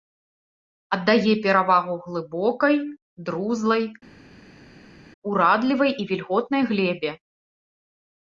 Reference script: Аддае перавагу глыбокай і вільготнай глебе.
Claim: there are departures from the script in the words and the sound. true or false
true